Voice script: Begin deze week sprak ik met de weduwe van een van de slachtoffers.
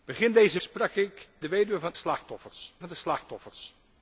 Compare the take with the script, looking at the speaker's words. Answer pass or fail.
fail